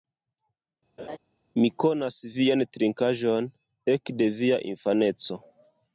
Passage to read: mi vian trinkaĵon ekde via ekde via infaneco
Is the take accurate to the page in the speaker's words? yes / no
no